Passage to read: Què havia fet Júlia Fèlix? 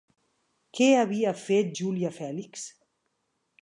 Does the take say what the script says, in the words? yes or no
yes